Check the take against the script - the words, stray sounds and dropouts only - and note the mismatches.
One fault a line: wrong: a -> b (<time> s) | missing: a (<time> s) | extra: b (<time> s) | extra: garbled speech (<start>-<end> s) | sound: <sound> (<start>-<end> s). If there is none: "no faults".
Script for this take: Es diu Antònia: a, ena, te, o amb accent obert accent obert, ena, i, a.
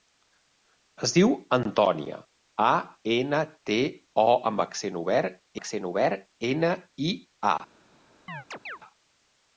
sound: chirp (8.3-8.8 s)